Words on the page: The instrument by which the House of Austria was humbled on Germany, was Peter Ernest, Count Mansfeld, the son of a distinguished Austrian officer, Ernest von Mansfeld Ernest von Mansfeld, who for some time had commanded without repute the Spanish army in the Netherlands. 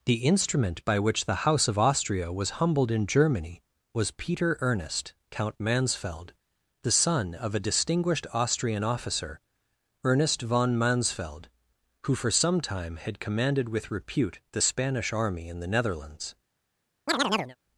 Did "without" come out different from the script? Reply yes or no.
yes